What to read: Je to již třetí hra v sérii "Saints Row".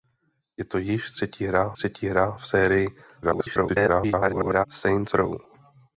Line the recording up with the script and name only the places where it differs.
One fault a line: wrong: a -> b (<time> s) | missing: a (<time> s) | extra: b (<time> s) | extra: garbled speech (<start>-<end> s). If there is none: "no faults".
extra: třetí hra (1.7 s)
extra: garbled speech (3.2-4.7 s)